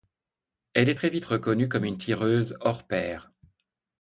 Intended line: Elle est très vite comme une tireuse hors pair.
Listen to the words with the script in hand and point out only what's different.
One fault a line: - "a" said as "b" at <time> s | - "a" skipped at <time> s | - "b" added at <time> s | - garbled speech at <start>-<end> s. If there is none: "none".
- "reconnue" added at 1.3 s